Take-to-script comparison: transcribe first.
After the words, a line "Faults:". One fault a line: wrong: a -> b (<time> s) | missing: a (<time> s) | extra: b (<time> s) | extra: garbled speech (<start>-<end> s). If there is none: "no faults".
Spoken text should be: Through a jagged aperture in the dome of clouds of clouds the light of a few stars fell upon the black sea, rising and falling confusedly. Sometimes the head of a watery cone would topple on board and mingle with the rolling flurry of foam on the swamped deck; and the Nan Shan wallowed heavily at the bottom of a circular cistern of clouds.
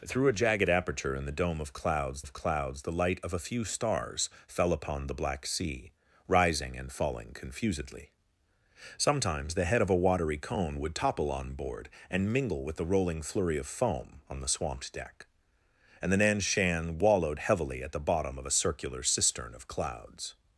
Through a jagged aperture in the dome of clouds of clouds the light of a few stars fell upon the black sea, rising and falling confusedly. Sometimes the head of a watery cone would topple on board and mingle with the rolling flurry of foam on the swamped deck; and the Nan Shan wallowed heavily at the bottom of a circular cistern of clouds.
Faults:
no faults